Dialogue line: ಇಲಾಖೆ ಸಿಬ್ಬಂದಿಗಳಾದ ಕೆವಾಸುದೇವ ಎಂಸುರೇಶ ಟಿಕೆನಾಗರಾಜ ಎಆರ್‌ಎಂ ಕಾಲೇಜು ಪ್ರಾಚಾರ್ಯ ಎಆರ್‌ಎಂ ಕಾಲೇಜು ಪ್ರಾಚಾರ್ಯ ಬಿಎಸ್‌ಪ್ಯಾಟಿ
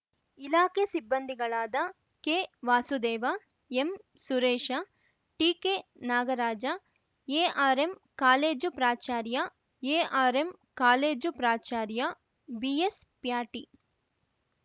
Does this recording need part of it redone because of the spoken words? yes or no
no